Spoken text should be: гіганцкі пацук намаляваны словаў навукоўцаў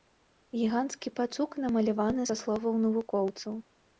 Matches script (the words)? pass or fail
fail